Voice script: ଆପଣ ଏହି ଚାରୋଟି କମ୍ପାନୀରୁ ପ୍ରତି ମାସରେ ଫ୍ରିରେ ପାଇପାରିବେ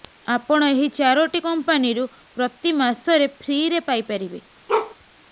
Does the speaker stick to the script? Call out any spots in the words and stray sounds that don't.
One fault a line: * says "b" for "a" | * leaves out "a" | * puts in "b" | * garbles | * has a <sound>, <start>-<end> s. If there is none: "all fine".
* has a bark, 4.7-5.0 s